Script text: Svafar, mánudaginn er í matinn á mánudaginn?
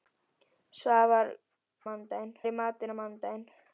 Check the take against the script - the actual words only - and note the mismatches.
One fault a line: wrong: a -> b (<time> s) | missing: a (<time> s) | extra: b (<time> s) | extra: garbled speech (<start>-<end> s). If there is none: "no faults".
no faults